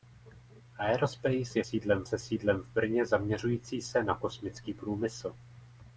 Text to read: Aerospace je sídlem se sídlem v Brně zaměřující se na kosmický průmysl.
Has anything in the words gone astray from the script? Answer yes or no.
no